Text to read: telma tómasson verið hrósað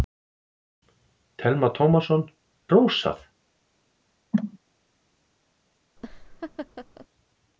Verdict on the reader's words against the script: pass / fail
fail